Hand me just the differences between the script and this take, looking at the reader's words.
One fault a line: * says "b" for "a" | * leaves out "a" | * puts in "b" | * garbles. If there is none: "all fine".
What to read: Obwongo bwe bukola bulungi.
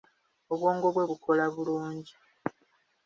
all fine